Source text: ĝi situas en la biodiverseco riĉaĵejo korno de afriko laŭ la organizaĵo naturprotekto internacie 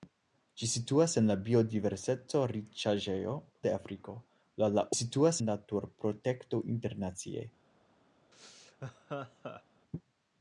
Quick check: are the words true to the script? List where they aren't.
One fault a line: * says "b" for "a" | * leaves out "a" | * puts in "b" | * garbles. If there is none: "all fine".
* leaves out "korno"
* says "situas" for "organizaĵo"